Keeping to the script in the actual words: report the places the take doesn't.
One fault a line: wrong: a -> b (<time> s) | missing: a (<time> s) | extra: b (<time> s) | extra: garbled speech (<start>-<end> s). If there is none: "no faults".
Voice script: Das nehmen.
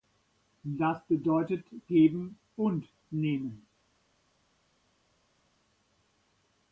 extra: bedeutet geben und (1.1 s)